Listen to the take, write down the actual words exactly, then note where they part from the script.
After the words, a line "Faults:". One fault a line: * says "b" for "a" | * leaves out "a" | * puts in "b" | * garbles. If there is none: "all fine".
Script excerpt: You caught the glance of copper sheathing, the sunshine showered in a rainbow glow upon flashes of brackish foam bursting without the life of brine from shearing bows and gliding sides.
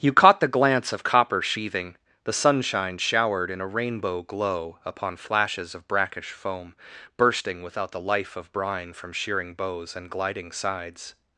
You caught the glance of copper sheathing, the sunshine showered in a rainbow glow upon flashes of brackish foam bursting without the life of brine from shearing bows and gliding sides.
Faults:
all fine